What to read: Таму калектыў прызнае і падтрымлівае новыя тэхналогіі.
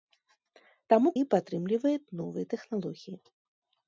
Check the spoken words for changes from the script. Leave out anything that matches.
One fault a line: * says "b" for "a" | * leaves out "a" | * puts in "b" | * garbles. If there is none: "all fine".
* leaves out "калектыў прызнае"